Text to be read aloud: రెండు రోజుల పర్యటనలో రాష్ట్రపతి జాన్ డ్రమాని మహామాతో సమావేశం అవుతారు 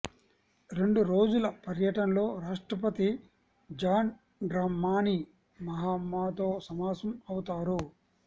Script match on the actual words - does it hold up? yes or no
yes